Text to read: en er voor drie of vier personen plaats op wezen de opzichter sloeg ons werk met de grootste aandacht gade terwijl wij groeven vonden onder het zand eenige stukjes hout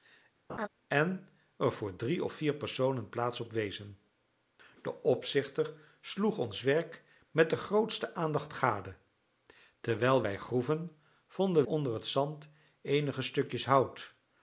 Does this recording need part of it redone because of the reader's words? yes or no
no